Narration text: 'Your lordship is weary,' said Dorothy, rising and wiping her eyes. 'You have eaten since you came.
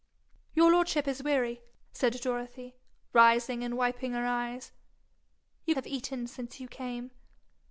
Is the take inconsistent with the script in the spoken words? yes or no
no